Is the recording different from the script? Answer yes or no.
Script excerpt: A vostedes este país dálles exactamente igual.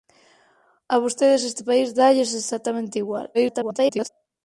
yes